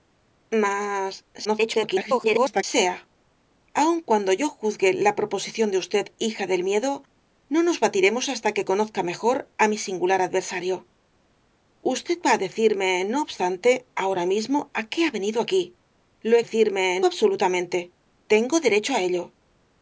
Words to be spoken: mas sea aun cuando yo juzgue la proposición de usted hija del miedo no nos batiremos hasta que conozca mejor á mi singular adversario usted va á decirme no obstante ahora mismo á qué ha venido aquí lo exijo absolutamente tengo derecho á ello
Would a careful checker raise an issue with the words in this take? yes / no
yes